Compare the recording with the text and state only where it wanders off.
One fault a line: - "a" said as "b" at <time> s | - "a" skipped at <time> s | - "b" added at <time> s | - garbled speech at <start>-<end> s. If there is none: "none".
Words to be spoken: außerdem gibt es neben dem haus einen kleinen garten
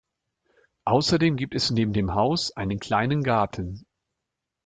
none